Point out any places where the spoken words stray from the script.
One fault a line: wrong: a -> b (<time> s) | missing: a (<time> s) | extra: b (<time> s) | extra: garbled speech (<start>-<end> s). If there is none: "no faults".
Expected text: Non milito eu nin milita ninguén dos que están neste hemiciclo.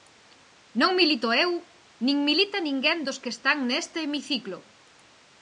no faults